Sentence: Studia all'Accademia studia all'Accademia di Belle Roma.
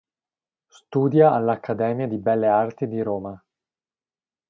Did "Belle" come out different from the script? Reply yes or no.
yes